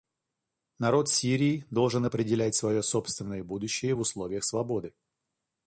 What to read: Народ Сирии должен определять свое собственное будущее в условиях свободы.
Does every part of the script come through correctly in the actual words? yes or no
yes